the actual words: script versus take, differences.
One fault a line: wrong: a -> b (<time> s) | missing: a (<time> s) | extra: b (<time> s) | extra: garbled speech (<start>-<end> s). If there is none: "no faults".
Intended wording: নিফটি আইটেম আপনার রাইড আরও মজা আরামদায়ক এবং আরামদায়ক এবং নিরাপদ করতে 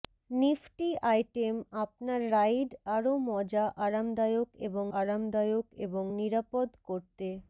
no faults